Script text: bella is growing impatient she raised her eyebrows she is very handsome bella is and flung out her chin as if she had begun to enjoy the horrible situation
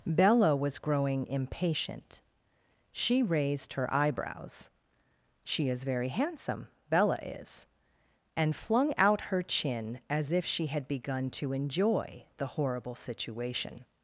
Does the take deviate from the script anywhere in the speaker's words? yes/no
yes